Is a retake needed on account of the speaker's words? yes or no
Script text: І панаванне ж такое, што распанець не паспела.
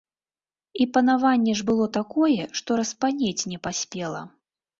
yes